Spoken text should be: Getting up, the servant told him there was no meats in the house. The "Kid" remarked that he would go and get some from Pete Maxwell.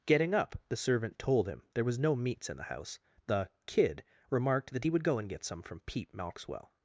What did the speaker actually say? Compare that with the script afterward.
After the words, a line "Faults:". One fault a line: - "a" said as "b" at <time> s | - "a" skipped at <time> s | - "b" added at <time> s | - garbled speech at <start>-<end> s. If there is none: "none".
Getting up, the servant told him there was no meats in the house. The "Kid" remarked that he would go and get some from Pete Maxwell.
Faults:
none